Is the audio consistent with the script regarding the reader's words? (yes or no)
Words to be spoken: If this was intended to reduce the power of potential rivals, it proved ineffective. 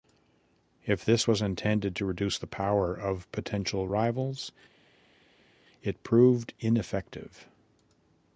yes